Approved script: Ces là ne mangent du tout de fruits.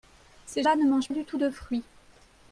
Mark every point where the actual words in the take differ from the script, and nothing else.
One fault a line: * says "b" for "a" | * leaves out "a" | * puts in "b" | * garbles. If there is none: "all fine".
all fine